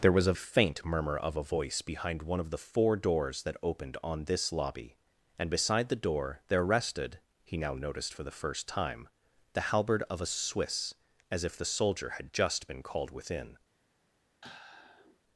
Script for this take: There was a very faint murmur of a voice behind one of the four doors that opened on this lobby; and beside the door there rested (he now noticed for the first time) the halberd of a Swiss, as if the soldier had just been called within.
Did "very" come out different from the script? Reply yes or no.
yes